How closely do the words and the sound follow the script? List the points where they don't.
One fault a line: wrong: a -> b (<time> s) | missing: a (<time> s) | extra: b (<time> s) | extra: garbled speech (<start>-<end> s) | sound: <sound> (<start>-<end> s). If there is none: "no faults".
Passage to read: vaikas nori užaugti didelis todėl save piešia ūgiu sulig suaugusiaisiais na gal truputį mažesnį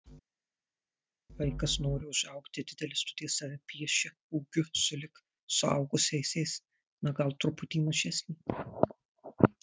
no faults